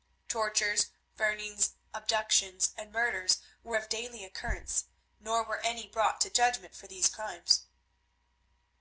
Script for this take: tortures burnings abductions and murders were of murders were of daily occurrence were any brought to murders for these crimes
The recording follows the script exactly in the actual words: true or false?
false